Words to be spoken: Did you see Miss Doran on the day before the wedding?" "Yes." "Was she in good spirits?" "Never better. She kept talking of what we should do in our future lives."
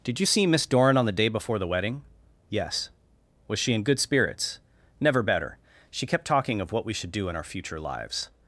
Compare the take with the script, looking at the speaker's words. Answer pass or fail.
pass